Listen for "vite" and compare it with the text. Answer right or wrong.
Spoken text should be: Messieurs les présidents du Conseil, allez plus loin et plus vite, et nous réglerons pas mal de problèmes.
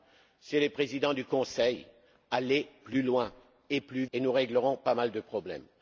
wrong